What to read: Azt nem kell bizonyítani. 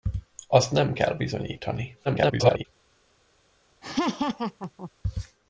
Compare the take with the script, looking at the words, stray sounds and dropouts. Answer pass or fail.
fail